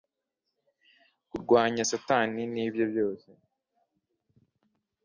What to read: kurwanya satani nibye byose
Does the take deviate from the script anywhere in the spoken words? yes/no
no